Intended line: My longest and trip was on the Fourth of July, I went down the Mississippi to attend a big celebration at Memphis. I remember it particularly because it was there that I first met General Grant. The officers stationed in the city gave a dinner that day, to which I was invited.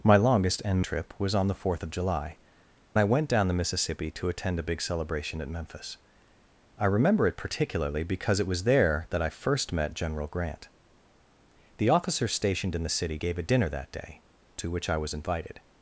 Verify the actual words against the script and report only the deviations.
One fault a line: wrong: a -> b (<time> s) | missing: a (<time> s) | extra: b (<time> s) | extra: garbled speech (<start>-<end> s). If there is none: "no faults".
no faults